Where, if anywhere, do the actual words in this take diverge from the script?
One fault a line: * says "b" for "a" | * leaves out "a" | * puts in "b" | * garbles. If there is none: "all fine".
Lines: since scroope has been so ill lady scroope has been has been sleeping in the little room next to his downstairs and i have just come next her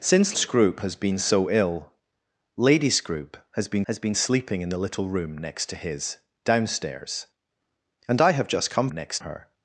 all fine